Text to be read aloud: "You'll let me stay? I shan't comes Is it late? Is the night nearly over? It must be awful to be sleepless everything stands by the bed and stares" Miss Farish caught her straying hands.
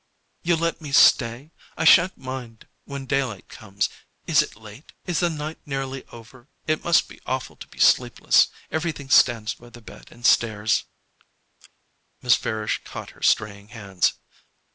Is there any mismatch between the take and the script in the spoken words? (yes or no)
yes